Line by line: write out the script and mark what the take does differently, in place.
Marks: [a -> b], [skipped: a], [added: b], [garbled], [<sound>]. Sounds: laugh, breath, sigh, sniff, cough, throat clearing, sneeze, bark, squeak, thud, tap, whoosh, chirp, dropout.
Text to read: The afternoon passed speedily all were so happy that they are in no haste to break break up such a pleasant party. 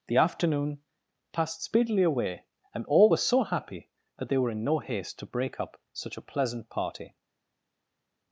The afternoon passed speedily [added: away and] all were so happy that they [are -> were] in no haste to break [skipped: break] up such a pleasant party.